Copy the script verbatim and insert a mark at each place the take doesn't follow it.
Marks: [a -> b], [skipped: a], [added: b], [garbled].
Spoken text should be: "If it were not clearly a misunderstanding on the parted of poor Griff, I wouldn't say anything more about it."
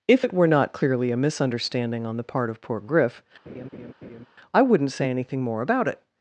"If it were not clearly a misunderstanding on the [parted -> part] of poor Griff, I wouldn't say anything more about it."